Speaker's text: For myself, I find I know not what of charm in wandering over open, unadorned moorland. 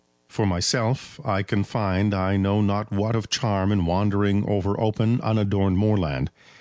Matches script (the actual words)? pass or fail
fail